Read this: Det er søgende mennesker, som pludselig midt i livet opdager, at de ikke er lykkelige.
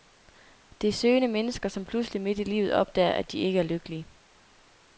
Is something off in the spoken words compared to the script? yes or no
no